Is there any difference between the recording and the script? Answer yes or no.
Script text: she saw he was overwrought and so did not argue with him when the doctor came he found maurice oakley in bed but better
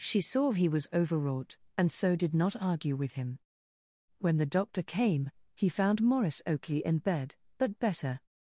no